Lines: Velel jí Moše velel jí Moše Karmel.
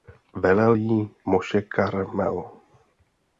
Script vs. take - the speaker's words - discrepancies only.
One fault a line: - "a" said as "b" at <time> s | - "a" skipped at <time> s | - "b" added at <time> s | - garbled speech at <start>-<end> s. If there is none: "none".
- "velel jí Moše" skipped at 1.6 s